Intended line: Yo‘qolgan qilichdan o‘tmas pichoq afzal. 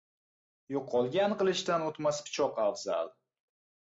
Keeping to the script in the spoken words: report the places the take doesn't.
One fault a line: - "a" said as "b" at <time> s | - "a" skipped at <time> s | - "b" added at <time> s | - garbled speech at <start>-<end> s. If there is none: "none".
none